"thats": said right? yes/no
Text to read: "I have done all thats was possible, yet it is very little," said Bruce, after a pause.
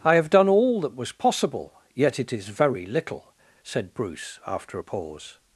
no